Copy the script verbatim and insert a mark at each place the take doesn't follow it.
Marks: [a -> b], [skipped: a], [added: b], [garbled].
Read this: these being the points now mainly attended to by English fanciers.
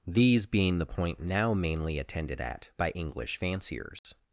these being the [points -> point] now mainly attended [to -> at] by English fanciers.